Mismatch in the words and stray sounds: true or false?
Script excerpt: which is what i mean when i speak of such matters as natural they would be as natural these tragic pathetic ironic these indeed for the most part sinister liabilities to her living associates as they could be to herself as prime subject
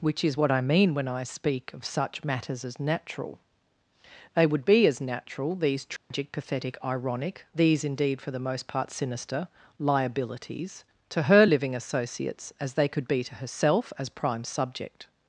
true